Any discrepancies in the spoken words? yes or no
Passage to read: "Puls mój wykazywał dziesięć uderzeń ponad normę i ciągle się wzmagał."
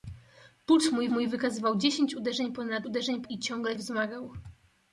yes